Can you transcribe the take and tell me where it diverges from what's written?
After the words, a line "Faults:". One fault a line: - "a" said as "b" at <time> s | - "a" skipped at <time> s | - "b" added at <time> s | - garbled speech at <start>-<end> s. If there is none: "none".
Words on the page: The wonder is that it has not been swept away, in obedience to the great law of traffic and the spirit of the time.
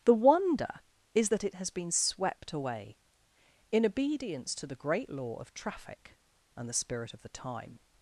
The wonder is that it has been swept away, in obedience to the great law of traffic and the spirit of the time.
Faults:
- "not" skipped at 1.7 s